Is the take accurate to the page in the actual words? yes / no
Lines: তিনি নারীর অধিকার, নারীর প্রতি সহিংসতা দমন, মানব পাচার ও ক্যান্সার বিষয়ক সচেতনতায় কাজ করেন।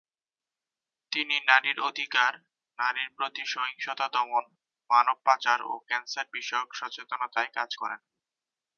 yes